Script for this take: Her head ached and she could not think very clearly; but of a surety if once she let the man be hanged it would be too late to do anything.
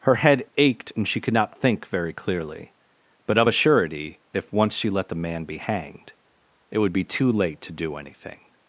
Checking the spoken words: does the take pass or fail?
pass